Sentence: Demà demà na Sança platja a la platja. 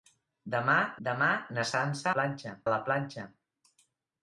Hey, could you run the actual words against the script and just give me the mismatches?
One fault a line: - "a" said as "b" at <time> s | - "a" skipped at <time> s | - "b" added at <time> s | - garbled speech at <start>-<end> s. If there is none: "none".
none